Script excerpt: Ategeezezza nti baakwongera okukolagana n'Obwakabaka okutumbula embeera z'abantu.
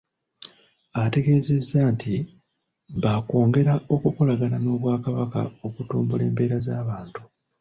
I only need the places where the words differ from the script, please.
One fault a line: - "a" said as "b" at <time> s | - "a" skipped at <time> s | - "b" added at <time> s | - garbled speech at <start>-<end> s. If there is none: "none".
none